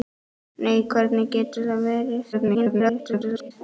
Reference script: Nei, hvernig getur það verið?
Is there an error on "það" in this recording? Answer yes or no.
no